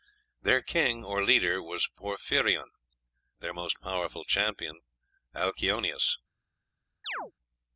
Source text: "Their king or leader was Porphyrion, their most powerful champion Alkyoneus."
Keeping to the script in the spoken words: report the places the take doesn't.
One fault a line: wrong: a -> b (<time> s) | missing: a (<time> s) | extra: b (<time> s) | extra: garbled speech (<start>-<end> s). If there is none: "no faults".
no faults